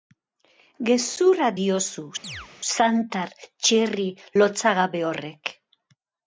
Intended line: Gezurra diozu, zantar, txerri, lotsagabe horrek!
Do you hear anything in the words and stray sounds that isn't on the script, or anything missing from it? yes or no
yes